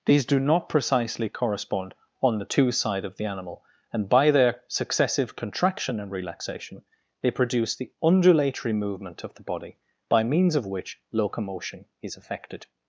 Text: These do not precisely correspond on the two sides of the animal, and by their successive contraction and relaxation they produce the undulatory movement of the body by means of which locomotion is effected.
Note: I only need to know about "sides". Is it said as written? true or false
false